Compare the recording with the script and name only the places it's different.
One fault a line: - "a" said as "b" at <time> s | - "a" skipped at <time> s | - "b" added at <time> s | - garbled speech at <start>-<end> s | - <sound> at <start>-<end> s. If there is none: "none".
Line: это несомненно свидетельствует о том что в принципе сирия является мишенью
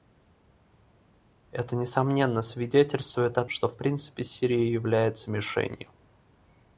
- "том" skipped at 3.4 s